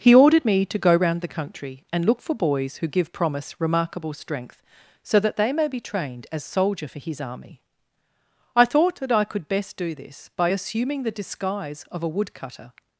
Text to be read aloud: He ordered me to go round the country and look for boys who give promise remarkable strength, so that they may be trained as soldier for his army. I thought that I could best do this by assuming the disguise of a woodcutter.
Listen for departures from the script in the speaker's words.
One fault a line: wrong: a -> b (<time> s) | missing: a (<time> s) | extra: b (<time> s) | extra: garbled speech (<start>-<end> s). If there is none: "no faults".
no faults